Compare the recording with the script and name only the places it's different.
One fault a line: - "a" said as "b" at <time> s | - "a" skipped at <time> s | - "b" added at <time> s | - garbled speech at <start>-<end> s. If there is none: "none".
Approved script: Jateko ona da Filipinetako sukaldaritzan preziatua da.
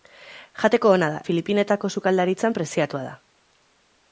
none